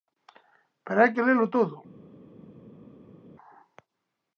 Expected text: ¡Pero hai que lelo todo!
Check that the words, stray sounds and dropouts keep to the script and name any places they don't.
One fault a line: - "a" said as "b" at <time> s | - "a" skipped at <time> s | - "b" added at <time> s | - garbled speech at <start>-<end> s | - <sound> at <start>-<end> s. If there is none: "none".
none